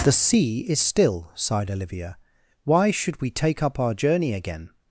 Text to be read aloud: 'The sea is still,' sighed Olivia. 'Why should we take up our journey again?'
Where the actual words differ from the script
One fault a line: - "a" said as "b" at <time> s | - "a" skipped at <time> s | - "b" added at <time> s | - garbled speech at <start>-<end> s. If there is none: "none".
none